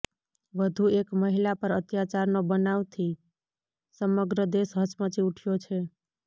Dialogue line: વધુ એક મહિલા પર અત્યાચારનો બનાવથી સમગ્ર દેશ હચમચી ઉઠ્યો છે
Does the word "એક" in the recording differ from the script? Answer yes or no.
no